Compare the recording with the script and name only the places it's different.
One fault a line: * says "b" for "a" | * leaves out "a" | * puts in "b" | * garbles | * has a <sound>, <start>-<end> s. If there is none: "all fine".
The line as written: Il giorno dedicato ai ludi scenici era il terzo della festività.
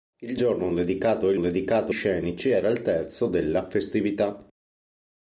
* says "dedicato" for "ludi"